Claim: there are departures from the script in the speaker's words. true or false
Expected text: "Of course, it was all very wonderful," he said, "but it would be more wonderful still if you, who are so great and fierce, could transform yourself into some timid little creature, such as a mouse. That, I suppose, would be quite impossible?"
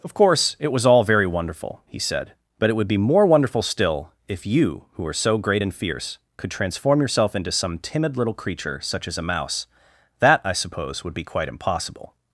false